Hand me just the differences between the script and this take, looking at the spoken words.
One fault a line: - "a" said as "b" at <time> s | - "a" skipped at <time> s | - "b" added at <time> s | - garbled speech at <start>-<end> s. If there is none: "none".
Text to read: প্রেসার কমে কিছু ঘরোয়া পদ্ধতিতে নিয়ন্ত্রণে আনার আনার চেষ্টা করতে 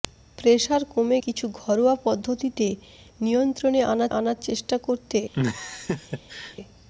none